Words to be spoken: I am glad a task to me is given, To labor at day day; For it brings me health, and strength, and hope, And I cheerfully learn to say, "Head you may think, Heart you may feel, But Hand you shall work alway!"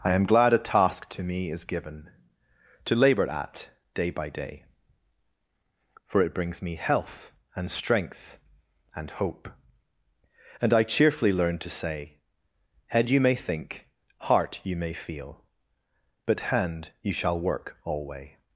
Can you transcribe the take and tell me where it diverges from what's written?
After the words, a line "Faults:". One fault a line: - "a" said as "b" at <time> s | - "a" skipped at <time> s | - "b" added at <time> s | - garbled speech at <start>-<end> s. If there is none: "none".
I am glad a task to me is given, To labor at day by day; For it brings me health, and strength, and hope, And I cheerfully learn to say, "Head you may think, Heart you may feel, But Hand you shall work alway!"
Faults:
- "by" added at 4.1 s